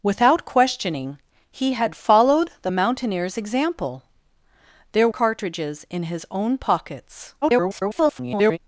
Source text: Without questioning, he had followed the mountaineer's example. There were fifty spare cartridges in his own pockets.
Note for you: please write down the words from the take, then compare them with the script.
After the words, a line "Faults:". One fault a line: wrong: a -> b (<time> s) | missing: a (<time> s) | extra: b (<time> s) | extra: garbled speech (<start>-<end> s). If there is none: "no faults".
Without questioning, he had followed the mountaineer's example. There cartridges in his own pockets. [garbled]
Faults:
missing: were fifty spare (5.1 s)
extra: garbled speech (7.4-8.6 s)